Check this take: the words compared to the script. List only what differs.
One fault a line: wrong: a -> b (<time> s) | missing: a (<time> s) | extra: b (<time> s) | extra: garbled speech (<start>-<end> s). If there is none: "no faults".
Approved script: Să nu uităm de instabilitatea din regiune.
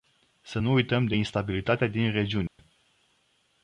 no faults